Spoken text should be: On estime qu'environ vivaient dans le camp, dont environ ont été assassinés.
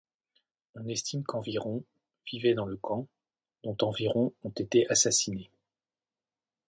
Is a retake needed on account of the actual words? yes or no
no